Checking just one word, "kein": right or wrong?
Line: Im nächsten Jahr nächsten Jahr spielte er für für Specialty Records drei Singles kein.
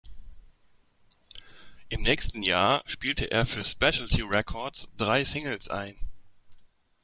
wrong